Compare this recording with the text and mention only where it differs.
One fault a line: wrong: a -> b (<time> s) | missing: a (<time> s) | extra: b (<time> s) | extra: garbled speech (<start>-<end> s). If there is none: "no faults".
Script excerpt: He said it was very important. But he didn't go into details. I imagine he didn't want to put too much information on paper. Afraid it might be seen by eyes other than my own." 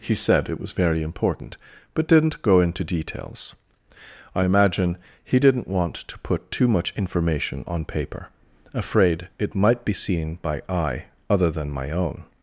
missing: he (2.1 s)
wrong: eyes -> eye (10.7 s)